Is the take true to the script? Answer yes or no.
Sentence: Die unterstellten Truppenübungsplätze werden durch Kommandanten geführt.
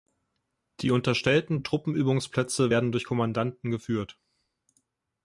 yes